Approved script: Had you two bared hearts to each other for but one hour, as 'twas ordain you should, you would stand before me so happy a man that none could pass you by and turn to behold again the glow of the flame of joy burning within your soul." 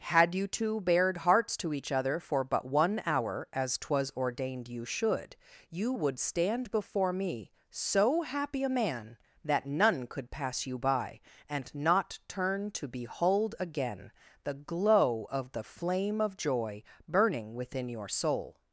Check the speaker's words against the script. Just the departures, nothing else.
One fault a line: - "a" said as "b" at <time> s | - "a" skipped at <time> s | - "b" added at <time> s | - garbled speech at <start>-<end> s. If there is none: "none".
- "ordain" said as "ordained" at 4.2 s
- "not" added at 11.7 s